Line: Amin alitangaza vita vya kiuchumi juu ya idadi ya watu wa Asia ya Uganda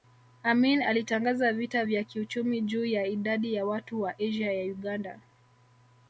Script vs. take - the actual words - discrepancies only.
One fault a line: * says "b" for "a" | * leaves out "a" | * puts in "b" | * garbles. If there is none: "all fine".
all fine